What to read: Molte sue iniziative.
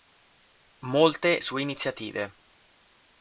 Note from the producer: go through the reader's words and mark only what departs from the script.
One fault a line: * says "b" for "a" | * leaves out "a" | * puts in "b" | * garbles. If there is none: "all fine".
all fine